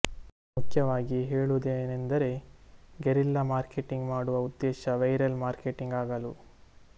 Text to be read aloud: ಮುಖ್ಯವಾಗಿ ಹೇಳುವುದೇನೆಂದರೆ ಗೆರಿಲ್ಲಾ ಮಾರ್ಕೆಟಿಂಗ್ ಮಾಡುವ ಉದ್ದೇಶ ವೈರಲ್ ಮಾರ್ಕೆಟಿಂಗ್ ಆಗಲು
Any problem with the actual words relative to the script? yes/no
no